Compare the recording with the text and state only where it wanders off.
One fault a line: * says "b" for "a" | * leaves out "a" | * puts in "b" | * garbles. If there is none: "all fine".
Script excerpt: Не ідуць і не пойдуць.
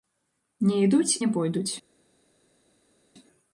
* leaves out "і"